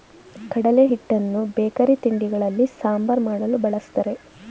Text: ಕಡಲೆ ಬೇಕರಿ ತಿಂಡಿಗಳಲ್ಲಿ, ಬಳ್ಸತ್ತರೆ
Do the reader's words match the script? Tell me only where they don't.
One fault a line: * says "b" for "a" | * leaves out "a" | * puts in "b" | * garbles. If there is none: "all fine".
* puts in "ಹಿಟ್ಟನ್ನು"
* puts in "ಸಾಂಬಾರ್ ಮಾಡಲು"